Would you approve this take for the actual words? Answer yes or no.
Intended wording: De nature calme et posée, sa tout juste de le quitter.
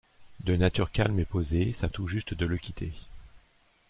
yes